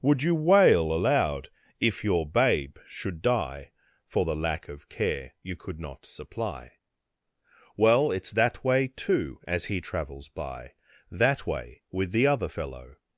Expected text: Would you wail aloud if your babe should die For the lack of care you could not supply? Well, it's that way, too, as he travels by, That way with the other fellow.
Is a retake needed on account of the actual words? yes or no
no